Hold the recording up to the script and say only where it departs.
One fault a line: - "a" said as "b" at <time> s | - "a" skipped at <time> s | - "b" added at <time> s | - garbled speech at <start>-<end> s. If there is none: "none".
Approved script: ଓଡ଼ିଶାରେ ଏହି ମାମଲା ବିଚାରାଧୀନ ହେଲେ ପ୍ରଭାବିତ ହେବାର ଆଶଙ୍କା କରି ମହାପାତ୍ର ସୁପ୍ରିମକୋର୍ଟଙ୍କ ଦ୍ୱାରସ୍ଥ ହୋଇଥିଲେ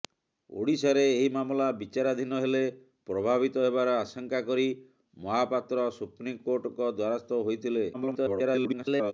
- garbled speech at 7.9-9.1 s